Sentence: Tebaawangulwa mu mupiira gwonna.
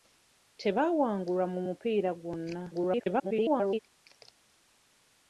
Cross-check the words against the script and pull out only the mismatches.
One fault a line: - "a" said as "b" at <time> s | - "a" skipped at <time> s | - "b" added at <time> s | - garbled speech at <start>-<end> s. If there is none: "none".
- garbled speech at 2.7-3.8 s